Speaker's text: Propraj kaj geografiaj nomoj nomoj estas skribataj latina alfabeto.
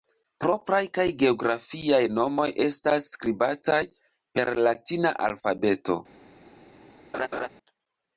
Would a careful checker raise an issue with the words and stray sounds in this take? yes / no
yes